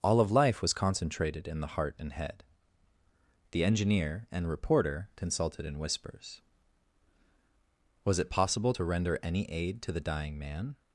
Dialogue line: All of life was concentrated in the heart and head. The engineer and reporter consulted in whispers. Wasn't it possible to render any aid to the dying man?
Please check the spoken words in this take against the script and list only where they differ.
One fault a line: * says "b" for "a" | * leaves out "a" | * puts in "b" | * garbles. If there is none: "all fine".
* says "Was" for "Wasn't"